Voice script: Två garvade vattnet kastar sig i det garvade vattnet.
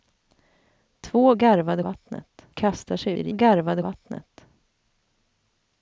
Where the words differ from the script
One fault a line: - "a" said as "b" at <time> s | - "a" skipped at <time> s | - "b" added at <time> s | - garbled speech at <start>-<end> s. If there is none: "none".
none